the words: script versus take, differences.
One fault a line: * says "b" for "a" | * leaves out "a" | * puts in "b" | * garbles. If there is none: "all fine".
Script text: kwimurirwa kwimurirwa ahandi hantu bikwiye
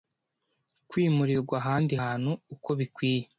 * leaves out "kwimurirwa"
* puts in "uko"